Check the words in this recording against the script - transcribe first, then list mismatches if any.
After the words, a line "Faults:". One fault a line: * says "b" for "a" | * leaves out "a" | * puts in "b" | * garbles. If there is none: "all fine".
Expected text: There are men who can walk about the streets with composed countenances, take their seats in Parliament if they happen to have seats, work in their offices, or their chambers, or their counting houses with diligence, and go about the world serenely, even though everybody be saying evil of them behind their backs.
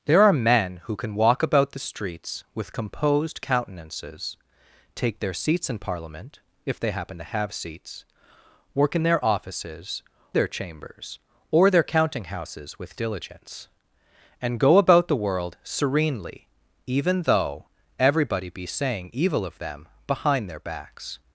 There are men who can walk about the streets with composed countenances, take their seats in Parliament if they happen to have seats, work in their offices, their chambers, or their counting houses with diligence, and go about the world serenely, even though everybody be saying evil of them behind their backs.
Faults:
* leaves out "or"